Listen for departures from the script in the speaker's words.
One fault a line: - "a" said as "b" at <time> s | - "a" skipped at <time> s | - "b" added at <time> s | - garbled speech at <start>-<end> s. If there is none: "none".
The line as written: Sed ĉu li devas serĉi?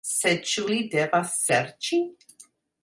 none